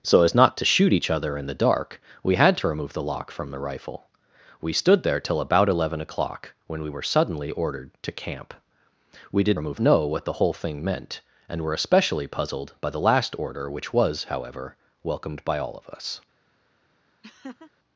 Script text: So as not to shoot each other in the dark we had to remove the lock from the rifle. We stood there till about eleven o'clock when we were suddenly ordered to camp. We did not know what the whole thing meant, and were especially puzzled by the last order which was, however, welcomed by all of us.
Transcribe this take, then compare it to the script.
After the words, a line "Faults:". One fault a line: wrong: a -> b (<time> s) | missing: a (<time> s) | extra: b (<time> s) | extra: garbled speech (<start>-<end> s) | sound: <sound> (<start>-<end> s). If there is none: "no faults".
So as not to shoot each other in the dark we had to remove the lock from the rifle. We stood there till about eleven o'clock when we were suddenly ordered to camp. We did remove know what the whole thing meant, and were especially puzzled by the last order which was, however, welcomed by all of us.
Faults:
wrong: not -> remove (9.5 s)
sound: laugh (17.2-17.7 s)